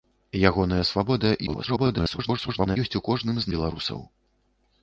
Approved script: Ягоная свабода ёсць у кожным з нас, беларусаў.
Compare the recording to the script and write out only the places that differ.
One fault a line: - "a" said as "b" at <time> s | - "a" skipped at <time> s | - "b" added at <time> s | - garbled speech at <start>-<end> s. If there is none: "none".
- garbled speech at 1.5-2.8 s
- "нас" skipped at 3.5 s